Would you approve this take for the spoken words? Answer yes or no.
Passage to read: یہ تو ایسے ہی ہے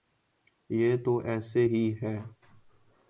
yes